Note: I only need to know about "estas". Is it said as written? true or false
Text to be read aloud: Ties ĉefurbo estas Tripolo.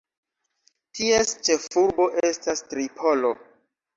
true